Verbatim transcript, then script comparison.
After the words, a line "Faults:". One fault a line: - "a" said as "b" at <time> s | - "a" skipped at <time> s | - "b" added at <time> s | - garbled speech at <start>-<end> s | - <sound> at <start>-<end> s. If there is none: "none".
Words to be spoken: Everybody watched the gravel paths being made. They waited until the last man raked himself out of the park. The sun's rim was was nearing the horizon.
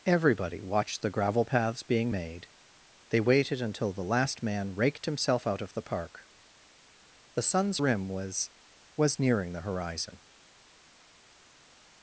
Everybody watched the gravel paths being made. They waited until the last man raked himself out of the park. The sun's rim was was nearing the horizon.
Faults:
none